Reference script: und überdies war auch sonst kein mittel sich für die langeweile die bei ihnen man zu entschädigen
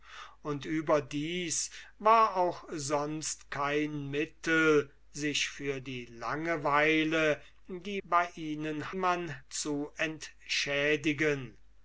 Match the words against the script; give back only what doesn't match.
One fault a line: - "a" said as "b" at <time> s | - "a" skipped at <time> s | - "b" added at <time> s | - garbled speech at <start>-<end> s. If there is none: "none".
none